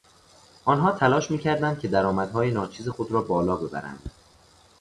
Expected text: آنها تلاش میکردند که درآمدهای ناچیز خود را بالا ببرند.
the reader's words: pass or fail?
pass